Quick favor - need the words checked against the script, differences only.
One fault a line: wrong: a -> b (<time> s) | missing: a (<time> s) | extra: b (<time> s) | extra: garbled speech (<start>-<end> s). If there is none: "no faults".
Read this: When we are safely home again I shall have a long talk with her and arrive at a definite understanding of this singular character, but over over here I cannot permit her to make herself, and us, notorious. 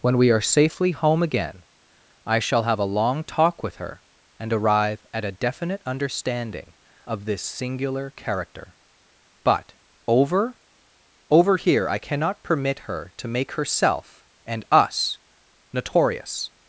no faults